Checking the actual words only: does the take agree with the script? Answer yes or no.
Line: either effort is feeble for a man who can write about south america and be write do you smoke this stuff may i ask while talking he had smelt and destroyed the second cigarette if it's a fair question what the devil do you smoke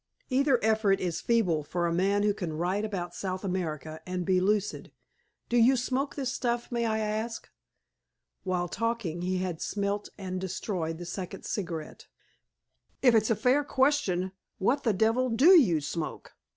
no